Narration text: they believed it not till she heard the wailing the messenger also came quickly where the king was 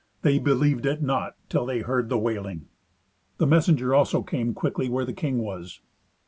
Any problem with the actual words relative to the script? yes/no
yes